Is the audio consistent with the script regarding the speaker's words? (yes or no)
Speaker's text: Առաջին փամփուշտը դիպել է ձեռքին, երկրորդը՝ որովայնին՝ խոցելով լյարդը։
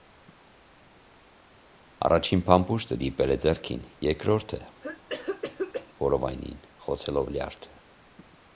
yes